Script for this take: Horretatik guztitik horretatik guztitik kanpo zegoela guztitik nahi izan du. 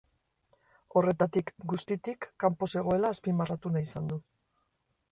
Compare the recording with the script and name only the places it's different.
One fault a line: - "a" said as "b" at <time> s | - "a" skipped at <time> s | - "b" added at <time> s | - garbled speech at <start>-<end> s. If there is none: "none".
- "horretatik guztitik" skipped at 2.3 s
- "guztitik" said as "azpimarratu" at 3.2 s